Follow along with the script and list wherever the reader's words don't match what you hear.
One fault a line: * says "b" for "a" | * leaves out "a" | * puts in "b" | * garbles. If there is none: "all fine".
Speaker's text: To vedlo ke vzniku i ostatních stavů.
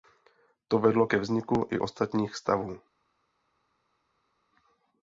all fine